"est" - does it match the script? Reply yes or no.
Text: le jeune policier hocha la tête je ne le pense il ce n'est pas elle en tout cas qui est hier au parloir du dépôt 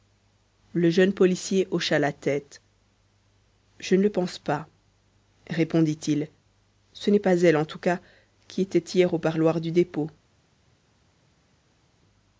no